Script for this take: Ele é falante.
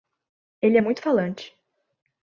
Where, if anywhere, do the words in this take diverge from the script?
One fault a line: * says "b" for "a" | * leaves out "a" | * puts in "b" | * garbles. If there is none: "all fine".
* puts in "muito"